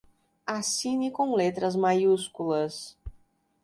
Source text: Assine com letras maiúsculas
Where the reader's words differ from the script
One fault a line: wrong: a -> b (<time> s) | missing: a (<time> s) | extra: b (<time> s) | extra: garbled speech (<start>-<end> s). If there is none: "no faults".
no faults